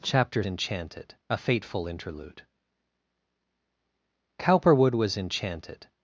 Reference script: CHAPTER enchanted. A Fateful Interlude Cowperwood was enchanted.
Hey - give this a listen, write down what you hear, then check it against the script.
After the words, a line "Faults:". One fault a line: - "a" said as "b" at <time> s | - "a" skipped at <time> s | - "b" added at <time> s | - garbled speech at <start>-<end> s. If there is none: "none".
CHAPTER enchanted. A Fateful Interlude Cowperwood was enchanted.
Faults:
none